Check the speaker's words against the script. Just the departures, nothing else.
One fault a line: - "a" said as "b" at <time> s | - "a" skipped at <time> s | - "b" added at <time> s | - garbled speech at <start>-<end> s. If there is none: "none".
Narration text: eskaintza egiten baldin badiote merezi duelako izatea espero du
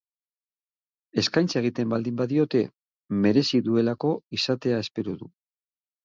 none